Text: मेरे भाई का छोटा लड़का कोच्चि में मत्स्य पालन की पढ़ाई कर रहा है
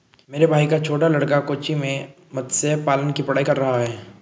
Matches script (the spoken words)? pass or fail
pass